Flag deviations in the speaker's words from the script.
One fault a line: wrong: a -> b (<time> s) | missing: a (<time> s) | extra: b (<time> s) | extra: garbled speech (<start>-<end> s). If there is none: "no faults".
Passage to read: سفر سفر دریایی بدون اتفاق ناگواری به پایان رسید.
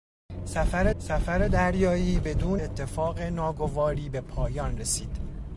no faults